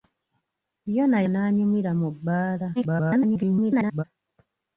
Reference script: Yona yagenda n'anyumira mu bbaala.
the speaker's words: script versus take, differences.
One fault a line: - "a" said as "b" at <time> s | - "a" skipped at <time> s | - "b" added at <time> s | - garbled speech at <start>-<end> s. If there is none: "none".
- "yagenda" skipped at 1.2 s
- garbled speech at 2.8-4.0 s